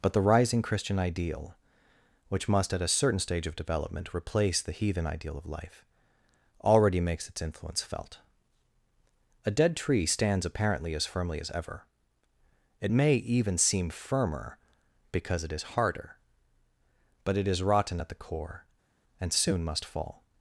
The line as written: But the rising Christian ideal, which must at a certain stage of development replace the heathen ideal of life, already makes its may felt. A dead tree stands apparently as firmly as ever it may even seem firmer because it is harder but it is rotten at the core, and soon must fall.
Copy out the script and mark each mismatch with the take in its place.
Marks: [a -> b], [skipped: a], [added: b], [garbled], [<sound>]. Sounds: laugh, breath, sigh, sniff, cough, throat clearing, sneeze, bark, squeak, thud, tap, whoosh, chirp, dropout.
But the rising Christian ideal, which must at a certain stage of development replace the heathen ideal of life, already makes its [may -> influence] felt. A dead tree stands apparently as firmly as ever it may even seem firmer because it is harder but it is rotten at the core, and soon must fall.